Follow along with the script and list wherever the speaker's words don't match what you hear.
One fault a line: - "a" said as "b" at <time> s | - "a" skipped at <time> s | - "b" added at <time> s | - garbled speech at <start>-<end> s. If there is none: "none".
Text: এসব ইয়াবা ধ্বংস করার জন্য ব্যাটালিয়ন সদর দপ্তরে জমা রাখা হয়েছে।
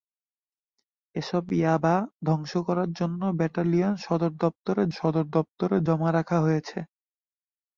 - "সদর দপ্তরে" added at 5.0 s